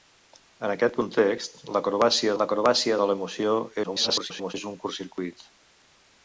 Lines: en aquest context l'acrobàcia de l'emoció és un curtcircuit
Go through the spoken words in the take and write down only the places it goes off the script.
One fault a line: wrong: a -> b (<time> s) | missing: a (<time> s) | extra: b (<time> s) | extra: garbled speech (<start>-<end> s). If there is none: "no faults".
extra: l'acrobàcia (2.4 s)
extra: garbled speech (3.8-4.5 s)